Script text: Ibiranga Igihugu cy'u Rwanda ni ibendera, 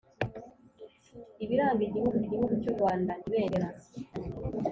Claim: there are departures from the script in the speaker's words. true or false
true